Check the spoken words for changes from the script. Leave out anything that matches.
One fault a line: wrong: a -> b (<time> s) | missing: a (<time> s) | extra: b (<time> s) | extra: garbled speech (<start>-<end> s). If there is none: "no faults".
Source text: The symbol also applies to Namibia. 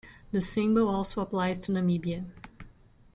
no faults